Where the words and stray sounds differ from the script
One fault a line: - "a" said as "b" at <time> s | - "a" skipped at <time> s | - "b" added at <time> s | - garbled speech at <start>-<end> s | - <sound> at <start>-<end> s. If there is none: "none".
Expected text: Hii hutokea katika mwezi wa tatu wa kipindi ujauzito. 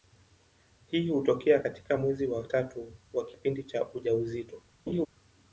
- "cha" added at 3.6 s
- laugh at 4.9-5.1 s